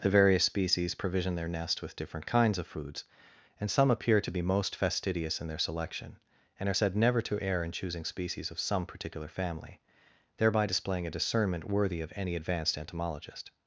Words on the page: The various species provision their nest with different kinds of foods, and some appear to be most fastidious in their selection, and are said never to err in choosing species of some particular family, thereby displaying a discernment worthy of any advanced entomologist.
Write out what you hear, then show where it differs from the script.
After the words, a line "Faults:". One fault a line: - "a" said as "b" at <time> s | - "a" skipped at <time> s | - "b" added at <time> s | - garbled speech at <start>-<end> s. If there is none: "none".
The various species provision their nest with different kinds of foods, and some appear to be most fastidious in their selection, and are said never to err in choosing species of some particular family, thereby displaying a discernment worthy of any advanced entomologist.
Faults:
none